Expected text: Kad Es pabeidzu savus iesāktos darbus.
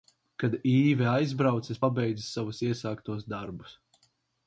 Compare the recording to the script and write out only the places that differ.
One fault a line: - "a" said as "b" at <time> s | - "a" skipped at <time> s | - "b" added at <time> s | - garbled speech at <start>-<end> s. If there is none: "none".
- "Īve aizbrauca" added at 0.7 s